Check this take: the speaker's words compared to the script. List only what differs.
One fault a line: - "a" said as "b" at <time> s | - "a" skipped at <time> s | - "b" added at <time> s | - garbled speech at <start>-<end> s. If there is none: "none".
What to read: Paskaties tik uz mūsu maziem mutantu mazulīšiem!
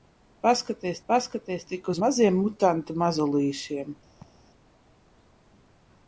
- "paskaties" added at 1.1 s
- "mūsu" skipped at 2.0 s